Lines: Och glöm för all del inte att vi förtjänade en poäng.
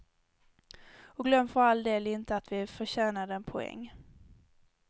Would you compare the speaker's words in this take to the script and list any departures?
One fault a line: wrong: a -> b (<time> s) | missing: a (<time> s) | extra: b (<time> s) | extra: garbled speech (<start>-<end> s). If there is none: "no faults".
no faults